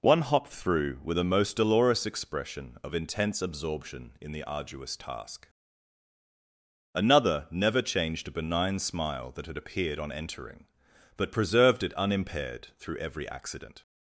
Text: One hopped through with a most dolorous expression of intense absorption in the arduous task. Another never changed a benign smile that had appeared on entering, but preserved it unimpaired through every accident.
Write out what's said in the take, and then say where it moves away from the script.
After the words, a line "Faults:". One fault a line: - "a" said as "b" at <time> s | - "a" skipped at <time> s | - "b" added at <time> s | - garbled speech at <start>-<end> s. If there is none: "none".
One hopped through with a most dolorous expression of intense absorption in the arduous task. Another never changed a benign smile that had appeared on entering, but preserved it unimpaired through every accident.
Faults:
none